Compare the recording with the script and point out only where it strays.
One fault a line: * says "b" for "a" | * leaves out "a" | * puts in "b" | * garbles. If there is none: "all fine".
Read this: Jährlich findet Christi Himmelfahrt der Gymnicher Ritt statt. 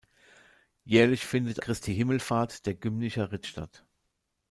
all fine